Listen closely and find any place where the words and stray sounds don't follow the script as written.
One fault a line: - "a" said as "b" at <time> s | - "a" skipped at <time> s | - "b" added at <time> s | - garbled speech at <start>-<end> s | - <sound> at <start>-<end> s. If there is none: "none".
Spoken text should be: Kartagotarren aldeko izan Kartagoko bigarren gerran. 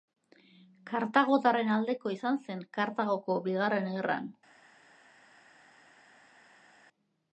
- "zen" added at 2.5 s